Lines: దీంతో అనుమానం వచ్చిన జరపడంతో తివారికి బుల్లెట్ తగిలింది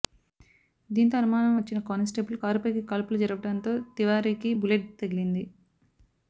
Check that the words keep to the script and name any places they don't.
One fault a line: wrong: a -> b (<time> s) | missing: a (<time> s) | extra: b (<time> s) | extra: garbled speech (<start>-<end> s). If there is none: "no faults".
extra: కానిస్టేబుల్ కారుపైకి కాల్పులు (1.9 s)